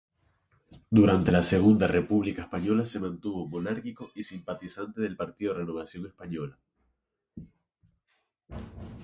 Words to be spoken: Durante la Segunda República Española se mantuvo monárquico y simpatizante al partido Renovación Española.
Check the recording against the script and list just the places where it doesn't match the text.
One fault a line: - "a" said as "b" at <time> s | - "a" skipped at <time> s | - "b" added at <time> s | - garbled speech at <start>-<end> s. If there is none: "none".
- "al" said as "del" at 5.0 s